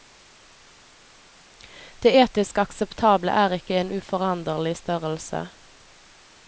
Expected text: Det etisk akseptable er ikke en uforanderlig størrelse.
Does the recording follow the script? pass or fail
pass